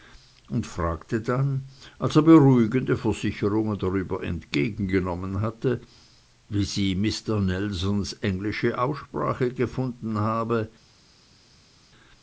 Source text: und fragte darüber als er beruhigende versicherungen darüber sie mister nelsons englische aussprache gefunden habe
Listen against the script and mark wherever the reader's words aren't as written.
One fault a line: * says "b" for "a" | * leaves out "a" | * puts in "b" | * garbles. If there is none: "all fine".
* says "dann" for "darüber"
* puts in "entgegengenommen hatte wie"